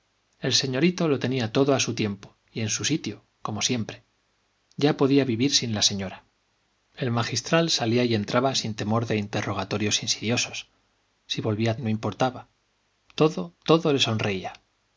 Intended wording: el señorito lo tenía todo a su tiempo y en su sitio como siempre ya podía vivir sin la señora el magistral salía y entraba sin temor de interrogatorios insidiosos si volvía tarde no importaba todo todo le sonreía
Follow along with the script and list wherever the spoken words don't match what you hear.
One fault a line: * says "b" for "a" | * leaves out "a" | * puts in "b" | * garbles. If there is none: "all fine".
* leaves out "tarde"